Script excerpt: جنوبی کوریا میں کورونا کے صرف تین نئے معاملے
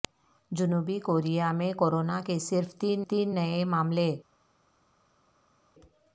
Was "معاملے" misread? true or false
false